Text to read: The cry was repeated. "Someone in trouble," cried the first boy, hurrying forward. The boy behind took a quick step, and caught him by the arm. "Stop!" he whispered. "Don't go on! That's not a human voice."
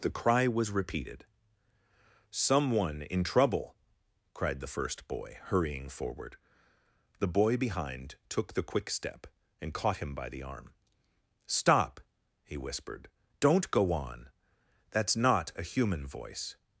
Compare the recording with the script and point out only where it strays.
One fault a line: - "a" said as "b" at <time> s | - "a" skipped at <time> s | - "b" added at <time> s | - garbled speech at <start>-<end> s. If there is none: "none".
- "a" said as "the" at 8.5 s